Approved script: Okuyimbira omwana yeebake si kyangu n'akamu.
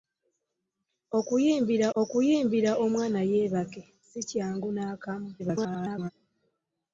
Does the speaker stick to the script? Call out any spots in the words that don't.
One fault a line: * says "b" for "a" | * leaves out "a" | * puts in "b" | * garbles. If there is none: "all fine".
* puts in "okuyimbira"
* garbles